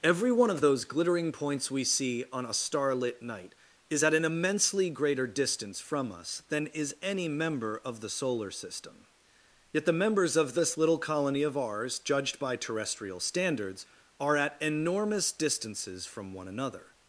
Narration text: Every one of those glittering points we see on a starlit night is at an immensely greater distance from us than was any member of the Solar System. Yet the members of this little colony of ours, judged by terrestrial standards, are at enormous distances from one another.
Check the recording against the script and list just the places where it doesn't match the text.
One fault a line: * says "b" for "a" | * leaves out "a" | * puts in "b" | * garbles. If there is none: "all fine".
* says "is" for "was"